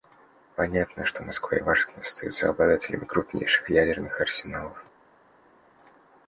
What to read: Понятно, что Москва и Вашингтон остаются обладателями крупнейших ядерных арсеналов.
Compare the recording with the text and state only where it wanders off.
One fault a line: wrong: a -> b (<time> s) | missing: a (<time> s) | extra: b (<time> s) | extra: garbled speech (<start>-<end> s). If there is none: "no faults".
no faults